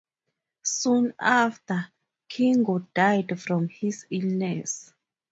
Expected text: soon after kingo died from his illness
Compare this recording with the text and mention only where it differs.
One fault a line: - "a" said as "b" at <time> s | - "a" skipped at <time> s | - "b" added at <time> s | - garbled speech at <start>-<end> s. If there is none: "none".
none